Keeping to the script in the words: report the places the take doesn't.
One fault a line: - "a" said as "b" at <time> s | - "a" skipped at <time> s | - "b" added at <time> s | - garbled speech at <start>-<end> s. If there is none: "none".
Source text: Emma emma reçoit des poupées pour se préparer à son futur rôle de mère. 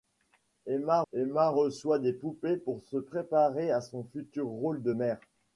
none